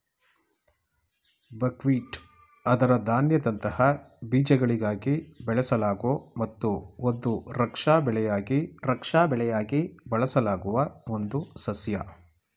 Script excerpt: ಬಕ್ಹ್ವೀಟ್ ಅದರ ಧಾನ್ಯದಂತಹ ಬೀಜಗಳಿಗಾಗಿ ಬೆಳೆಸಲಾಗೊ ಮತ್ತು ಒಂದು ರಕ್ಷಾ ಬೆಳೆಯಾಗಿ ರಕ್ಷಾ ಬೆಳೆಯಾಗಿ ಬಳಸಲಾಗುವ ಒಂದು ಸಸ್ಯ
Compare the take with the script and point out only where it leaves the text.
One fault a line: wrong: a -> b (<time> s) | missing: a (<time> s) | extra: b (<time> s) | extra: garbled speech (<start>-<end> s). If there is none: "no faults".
no faults